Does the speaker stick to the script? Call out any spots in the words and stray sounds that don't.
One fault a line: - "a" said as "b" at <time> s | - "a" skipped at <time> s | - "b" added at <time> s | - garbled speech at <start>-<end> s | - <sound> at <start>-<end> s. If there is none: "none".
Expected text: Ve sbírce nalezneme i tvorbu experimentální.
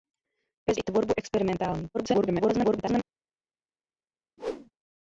- "sbírce nalezneme" skipped at 0.7 s
- garbled speech at 1.9-3.0 s
- whoosh at 4.4-4.7 s